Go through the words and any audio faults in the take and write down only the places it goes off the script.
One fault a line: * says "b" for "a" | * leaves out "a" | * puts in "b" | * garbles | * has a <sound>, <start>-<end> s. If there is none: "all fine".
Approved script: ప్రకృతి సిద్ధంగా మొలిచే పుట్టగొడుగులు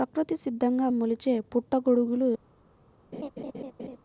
* has a laugh, 3.1-4.0 s